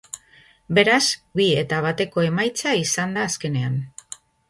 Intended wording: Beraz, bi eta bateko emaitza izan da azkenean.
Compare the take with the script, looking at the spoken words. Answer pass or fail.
pass